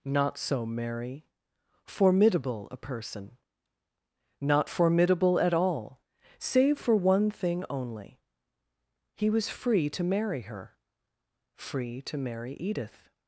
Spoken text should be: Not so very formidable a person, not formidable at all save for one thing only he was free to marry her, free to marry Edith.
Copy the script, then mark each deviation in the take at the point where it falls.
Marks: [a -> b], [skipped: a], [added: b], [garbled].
Not so [very -> merry] formidable a person, not formidable at all save for one thing only he was free to marry her, free to marry Edith.